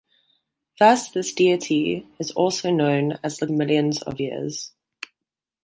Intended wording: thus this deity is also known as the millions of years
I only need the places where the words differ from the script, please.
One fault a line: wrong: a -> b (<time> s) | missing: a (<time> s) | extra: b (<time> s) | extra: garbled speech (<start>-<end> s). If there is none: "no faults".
no faults